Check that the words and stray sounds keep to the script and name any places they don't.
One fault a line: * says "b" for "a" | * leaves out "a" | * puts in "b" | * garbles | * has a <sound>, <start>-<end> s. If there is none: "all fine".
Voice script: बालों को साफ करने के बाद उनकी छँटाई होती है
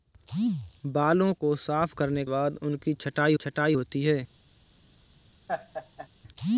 * leaves out "के"
* puts in "छँटाई"
* has a laugh, 5.5-6.1 s